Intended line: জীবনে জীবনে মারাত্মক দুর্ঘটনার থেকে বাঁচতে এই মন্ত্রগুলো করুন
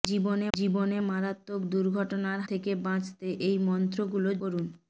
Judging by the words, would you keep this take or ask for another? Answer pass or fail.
pass